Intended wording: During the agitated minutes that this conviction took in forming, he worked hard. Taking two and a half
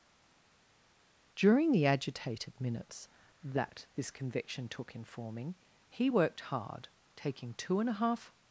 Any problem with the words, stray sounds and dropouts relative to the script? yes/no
no